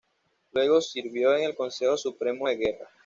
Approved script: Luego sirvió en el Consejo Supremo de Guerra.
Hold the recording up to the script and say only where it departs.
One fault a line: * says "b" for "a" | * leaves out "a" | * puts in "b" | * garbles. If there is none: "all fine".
all fine